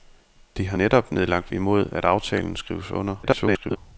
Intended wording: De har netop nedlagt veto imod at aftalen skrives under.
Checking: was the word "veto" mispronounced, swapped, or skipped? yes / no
yes